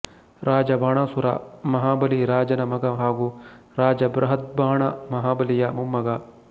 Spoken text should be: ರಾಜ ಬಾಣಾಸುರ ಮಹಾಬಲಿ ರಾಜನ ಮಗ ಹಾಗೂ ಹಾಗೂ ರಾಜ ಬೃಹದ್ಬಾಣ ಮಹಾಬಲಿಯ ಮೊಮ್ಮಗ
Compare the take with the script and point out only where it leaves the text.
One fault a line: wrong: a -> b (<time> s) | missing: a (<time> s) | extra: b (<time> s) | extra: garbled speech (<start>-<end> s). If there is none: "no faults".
missing: ಹಾಗೂ (3.3 s)